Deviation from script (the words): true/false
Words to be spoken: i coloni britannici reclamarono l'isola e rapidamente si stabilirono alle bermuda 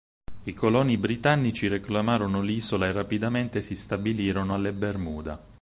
false